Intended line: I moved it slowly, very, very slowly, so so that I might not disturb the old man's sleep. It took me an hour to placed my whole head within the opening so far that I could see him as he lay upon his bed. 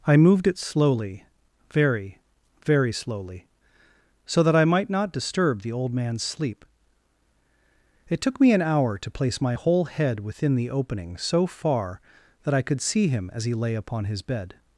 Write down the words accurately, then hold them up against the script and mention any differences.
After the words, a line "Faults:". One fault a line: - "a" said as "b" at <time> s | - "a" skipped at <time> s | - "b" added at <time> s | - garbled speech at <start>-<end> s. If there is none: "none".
I moved it slowly, very, very slowly, so that I might not disturb the old man's sleep. It took me an hour to place my whole head within the opening so far that I could see him as he lay upon his bed.
Faults:
- "so" skipped at 4.4 s
- "placed" said as "place" at 9.1 s